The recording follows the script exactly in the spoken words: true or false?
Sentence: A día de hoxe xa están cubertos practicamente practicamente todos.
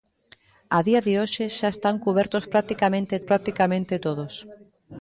true